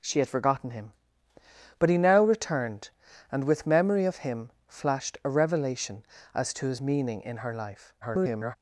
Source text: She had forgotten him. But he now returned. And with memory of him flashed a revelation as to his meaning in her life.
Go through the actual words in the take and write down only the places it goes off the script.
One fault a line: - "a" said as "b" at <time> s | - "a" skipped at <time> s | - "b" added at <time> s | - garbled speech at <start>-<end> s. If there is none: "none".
- garbled speech at 8.0-8.6 s